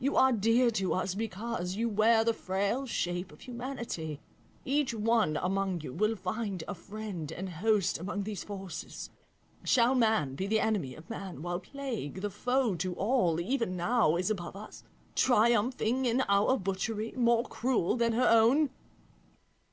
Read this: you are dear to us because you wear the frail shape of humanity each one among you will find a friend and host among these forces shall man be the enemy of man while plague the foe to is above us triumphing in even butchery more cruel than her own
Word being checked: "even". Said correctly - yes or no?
no